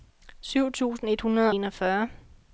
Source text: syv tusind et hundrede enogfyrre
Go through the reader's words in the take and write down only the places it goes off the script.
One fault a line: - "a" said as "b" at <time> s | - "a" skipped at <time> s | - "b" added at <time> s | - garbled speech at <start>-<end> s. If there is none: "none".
none